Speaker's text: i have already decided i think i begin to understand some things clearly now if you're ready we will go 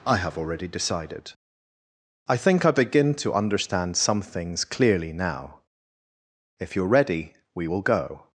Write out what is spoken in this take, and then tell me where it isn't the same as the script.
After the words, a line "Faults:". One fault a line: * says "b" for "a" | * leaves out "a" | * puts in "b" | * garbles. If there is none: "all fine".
i have already decided i think i begin to understand some things clearly now if you're ready we will go
Faults:
all fine